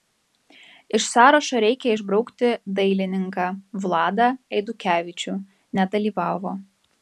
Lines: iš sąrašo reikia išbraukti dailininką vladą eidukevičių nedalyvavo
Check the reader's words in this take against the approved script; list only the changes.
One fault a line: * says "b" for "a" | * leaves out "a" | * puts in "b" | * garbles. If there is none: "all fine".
all fine